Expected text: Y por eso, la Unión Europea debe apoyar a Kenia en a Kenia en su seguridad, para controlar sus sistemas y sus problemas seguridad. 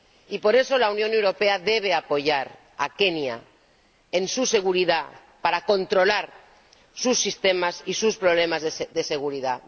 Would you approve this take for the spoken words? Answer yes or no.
no